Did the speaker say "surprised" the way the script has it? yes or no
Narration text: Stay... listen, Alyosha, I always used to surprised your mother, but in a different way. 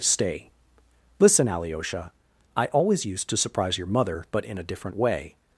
no